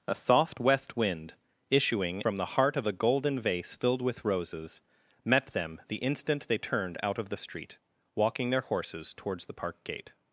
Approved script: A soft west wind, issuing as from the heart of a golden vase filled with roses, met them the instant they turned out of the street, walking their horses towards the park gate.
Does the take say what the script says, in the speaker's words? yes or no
no